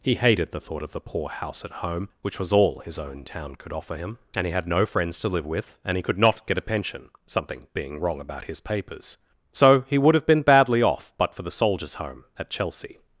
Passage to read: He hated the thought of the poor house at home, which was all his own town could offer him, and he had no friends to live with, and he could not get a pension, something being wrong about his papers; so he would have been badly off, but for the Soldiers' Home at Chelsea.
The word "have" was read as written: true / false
true